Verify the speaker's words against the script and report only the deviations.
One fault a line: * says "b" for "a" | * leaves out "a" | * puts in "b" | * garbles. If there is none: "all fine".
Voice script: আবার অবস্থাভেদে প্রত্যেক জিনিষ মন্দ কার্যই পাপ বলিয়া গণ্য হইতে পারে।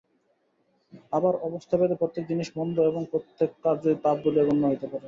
* puts in "এবং প্রত্যেক"